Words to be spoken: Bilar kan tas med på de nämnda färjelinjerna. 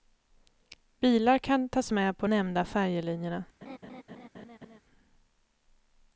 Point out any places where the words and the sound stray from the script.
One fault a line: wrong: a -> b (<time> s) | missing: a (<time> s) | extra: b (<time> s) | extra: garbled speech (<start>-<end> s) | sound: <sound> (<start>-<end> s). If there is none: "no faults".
missing: de (2.3 s)
sound: laugh (3.6-4.8 s)